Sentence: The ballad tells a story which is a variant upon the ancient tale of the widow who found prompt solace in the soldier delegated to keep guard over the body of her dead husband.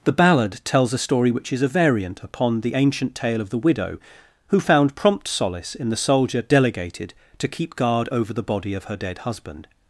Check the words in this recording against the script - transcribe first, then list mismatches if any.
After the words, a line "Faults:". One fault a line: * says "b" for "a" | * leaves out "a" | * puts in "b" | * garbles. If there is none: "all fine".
The ballad tells a story which is a variant upon the ancient tale of the widow who found prompt solace in the soldier delegated to keep guard over the body of her dead husband.
Faults:
all fine